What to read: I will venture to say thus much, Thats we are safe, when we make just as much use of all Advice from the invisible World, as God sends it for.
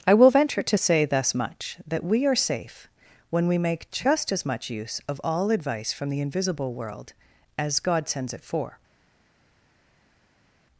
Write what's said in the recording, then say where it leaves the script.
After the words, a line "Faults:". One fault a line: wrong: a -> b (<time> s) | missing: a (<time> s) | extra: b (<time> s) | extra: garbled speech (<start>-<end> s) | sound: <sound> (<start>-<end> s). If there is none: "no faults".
I will venture to say thus much, That we are safe, when we make just as much use of all Advice from the invisible World, as God sends it for.
Faults:
wrong: Thats -> That (1.9 s)